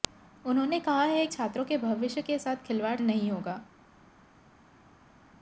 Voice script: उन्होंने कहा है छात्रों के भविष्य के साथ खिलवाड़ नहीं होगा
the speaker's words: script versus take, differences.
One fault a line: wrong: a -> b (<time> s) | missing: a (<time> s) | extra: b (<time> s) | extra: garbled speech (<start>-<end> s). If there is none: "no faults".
no faults